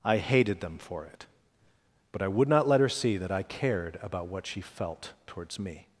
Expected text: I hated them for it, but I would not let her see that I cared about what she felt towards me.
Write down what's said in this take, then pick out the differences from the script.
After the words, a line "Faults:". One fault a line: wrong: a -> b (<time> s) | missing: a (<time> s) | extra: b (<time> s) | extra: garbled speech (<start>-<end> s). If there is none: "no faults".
I hated them for it, but I would not let her see that I cared about what she felt towards me.
Faults:
no faults